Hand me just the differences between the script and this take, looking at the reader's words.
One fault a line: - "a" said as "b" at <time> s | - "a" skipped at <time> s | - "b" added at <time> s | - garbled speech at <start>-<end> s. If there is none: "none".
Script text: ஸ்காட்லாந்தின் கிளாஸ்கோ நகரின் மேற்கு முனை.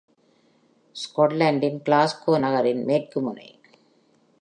none